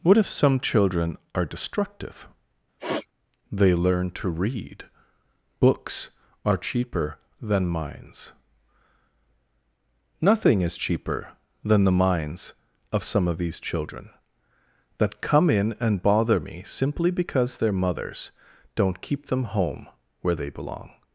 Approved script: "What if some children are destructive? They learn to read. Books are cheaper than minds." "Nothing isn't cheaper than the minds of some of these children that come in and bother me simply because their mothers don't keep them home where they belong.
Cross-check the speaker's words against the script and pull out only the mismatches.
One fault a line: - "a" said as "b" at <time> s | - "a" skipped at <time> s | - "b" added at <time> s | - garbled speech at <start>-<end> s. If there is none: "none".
- "isn't" said as "is" at 10.6 s